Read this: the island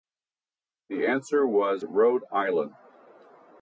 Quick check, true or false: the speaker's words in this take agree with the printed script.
false